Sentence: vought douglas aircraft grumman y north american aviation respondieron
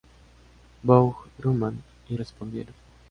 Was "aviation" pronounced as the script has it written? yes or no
no